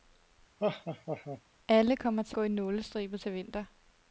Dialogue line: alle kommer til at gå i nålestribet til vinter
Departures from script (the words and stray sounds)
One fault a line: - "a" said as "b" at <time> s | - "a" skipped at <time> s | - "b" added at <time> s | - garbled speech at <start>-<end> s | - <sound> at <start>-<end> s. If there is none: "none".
- laugh at 0.6-1.4 s
- "at" skipped at 2.4 s